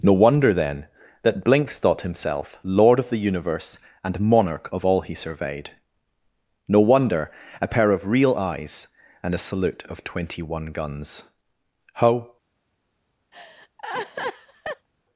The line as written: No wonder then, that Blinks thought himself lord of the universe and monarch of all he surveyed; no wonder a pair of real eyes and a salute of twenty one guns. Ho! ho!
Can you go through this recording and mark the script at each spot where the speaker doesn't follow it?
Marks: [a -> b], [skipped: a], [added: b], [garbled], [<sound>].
No wonder then, that Blinks thought himself lord of the universe and monarch of all he surveyed; no wonder a pair of real eyes and a salute of twenty one guns. Ho! [skipped: ho!] [laugh]